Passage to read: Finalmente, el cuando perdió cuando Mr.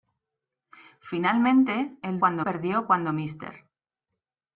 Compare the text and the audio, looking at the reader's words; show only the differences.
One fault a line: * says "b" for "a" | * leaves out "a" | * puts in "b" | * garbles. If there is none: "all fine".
all fine